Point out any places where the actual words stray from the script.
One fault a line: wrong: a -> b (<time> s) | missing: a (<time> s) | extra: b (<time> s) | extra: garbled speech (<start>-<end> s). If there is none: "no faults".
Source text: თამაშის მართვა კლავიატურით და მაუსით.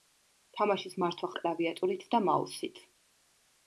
no faults